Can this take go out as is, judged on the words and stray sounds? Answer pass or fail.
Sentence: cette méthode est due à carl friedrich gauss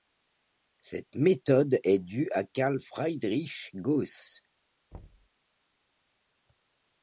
fail